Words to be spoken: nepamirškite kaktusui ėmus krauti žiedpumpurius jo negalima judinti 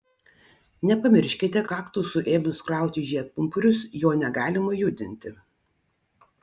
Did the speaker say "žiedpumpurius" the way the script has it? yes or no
yes